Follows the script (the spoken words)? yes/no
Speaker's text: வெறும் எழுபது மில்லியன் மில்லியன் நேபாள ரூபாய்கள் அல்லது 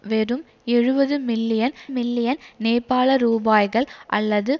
yes